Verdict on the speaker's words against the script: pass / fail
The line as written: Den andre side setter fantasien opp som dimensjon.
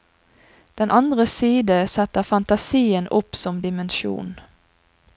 pass